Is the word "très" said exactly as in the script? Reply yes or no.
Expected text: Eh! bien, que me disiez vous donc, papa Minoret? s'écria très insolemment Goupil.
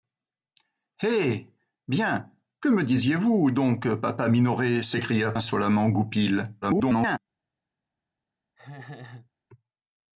no